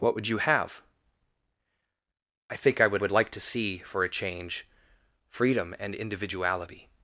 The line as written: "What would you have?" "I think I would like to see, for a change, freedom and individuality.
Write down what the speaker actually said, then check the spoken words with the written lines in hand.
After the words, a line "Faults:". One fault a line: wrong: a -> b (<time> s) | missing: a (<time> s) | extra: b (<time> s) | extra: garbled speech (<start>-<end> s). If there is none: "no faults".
"What would you have?" "I think I would would like to see, for a change, freedom and individuality.
Faults:
extra: would (3.0 s)